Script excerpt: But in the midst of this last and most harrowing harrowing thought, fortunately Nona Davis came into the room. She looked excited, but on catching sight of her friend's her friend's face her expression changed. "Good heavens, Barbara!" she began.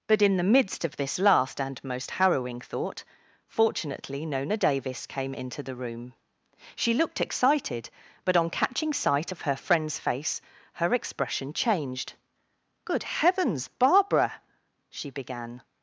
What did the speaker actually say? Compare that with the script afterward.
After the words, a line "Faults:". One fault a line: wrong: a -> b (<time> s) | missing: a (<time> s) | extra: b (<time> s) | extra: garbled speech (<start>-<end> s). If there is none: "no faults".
But in the midst of this last and most harrowing thought, fortunately Nona Davis came into the room. She looked excited, but on catching sight of her friend's face her expression changed. "Good heavens, Barbara!" she began.
Faults:
missing: harrowing (2.6 s)
missing: her friend's (10.0 s)